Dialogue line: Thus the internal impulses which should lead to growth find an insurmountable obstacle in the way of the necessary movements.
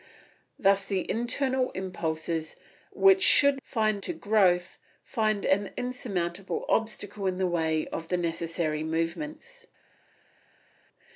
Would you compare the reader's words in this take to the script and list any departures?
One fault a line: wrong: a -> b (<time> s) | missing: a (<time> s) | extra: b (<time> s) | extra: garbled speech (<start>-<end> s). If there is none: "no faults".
wrong: lead -> find (3.6 s)